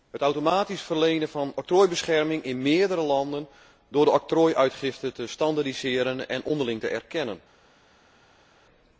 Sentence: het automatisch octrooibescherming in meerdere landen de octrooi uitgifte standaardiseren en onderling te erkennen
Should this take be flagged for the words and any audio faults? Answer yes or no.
yes